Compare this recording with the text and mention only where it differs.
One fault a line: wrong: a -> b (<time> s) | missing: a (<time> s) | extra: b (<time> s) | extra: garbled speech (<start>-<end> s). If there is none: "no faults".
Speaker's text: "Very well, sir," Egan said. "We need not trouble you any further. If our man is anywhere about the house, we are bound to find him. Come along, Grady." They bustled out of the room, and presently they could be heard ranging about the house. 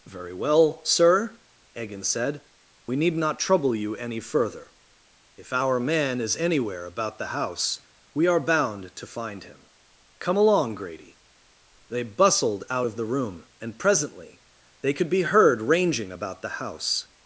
no faults